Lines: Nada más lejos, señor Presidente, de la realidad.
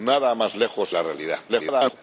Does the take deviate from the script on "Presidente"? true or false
true